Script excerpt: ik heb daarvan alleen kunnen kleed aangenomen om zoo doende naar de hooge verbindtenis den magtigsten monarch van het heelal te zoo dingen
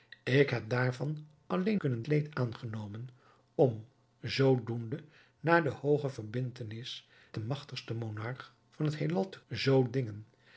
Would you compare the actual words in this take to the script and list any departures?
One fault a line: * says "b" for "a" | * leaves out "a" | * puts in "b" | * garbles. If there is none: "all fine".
all fine